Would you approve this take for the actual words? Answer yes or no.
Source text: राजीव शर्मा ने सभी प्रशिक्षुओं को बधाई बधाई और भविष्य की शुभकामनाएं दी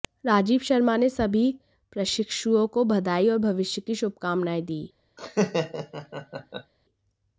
no